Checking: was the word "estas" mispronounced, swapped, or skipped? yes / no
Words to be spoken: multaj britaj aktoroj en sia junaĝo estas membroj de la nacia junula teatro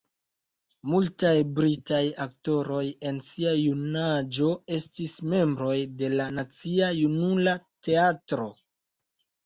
yes